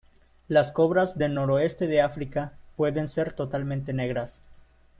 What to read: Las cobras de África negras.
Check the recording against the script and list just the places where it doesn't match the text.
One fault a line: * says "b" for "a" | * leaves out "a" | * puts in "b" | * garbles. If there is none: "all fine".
* puts in "del noroeste"
* puts in "pueden ser totalmente"